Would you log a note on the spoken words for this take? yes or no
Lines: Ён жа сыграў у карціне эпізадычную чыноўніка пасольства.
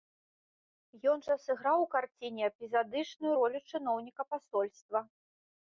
yes